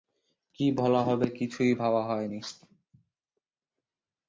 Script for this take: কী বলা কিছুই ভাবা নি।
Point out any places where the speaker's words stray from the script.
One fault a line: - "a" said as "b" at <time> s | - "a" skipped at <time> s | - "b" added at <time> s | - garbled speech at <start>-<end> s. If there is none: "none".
- "হবে" added at 1.0 s
- "হয়" added at 2.0 s